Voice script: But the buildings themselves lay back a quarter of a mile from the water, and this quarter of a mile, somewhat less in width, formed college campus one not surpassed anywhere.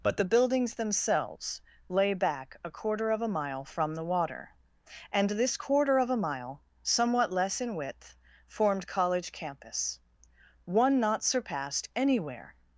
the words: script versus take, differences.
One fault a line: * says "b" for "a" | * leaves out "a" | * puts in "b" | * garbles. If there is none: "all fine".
all fine